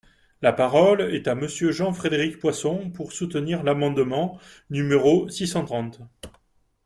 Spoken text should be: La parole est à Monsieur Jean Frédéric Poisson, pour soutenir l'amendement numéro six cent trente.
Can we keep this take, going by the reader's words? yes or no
yes